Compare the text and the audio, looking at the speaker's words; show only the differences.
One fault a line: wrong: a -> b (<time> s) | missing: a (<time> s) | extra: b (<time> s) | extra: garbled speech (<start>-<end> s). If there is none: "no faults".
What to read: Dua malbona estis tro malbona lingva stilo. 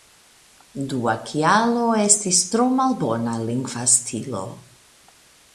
wrong: malbona -> kialo (1.3 s)